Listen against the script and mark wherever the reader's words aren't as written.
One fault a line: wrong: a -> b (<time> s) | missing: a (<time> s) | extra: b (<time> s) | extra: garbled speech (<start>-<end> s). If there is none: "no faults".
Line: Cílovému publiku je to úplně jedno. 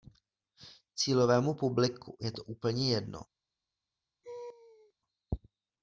no faults